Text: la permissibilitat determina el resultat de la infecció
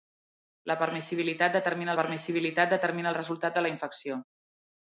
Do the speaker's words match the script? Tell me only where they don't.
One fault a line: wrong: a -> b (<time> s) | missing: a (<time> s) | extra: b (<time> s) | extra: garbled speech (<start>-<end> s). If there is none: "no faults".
extra: permissibilitat determina (2.0 s)